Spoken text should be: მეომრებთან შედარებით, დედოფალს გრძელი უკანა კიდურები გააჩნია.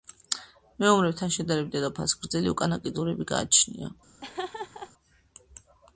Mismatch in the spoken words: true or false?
false